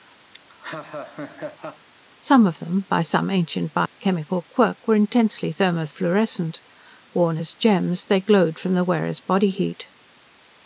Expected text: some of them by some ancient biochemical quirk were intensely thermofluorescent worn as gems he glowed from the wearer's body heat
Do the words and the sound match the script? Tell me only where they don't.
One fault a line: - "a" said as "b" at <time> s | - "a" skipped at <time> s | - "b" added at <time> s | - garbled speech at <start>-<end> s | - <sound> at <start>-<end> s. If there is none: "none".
- laugh at 0.3-1.9 s
- dropout at 3.9-4.0 s
- "he" said as "they" at 8.0 s